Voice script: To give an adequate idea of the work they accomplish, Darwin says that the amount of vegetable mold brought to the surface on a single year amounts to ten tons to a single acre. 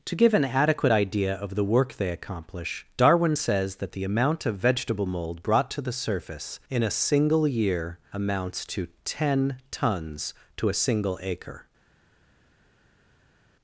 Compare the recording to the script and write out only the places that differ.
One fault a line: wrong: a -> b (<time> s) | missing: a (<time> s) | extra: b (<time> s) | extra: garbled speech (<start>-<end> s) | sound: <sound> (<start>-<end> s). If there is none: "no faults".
wrong: on -> in (6.7 s)